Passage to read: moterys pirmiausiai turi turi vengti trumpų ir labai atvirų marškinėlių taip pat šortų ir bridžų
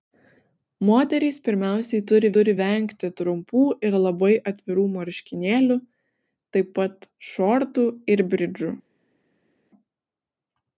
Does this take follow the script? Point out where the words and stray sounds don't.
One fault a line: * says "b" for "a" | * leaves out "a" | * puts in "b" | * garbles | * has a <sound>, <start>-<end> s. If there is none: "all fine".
all fine